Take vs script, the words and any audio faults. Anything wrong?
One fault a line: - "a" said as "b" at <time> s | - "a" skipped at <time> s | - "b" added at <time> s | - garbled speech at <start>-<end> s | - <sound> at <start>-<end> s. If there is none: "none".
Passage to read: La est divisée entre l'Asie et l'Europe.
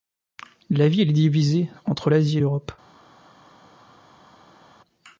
- "ville" added at 0.9 s